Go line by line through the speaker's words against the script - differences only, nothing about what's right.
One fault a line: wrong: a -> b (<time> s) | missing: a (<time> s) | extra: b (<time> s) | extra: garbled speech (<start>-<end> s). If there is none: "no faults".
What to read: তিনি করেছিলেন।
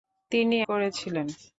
no faults